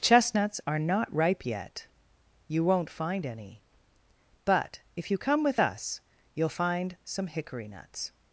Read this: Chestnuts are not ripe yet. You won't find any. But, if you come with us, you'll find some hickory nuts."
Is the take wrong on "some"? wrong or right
right